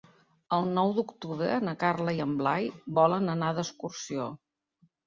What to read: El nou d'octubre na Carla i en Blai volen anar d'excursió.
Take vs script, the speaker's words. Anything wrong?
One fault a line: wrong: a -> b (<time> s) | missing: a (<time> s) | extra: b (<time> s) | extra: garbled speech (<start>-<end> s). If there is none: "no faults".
no faults